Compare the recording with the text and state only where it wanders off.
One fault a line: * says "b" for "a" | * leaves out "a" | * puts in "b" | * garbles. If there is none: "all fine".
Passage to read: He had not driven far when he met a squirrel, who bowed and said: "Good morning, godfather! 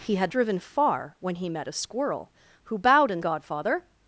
* leaves out "not"
* leaves out "said Good morning"